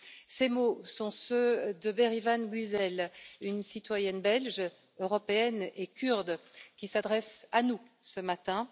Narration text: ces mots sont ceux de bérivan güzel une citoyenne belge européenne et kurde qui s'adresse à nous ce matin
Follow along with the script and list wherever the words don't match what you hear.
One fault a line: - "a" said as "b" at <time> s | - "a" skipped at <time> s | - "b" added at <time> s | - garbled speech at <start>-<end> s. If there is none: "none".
none